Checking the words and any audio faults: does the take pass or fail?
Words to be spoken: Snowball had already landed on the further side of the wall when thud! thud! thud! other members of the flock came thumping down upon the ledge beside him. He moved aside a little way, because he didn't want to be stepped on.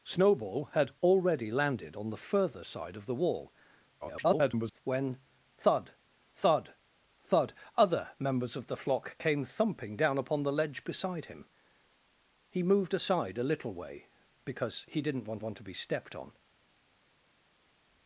fail